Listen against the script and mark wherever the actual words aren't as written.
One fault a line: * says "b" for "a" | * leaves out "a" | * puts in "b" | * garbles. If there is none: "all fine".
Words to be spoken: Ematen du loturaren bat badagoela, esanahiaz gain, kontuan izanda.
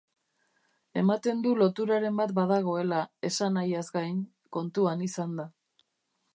all fine